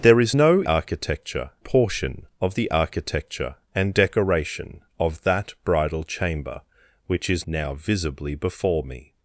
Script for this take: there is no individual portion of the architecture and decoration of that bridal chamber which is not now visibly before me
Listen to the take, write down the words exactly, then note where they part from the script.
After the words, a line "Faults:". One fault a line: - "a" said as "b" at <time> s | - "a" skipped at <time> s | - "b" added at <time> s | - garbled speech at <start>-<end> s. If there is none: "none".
there is no architecture portion of the architecture and decoration of that bridal chamber which is now visibly before me
Faults:
- "individual" said as "architecture" at 0.6 s
- "not" skipped at 7.4 s